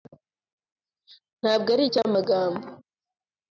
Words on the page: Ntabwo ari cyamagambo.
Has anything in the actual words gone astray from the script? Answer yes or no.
no